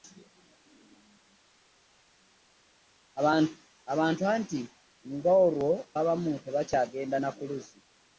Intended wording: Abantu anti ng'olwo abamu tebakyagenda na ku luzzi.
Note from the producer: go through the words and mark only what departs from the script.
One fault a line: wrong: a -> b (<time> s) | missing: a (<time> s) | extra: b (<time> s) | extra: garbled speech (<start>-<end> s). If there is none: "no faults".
no faults